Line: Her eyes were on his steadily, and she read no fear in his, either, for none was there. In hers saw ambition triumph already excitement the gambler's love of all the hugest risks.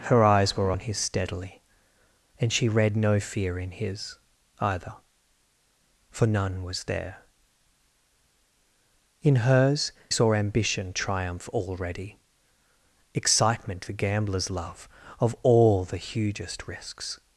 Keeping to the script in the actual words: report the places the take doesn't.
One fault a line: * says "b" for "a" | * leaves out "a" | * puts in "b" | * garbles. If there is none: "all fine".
all fine